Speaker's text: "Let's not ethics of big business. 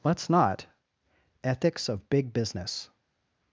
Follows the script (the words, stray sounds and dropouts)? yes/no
yes